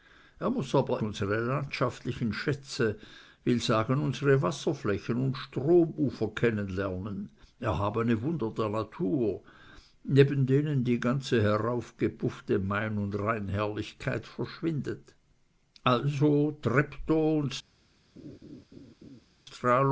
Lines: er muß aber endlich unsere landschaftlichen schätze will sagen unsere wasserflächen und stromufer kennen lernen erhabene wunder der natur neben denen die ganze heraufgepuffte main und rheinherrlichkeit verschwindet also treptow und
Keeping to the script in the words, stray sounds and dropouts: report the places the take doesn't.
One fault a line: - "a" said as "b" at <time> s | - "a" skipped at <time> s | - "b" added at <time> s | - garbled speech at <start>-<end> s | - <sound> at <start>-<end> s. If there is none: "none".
- "endlich" skipped at 1.0 s
- laugh at 18.2-19.3 s